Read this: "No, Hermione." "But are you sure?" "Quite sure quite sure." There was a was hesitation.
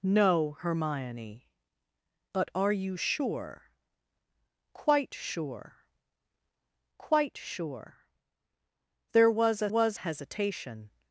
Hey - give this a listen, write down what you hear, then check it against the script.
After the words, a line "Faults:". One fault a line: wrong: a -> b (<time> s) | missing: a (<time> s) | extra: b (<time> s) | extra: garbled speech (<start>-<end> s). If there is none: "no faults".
"No, Hermione." "But are you sure?" "Quite sure quite sure." There was a was hesitation.
Faults:
no faults